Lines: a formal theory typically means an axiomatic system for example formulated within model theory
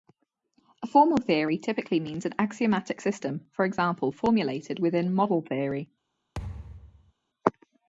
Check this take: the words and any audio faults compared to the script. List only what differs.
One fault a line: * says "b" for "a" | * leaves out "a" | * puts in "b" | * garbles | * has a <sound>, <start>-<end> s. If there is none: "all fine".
* has a thud, 6.4-7.1 s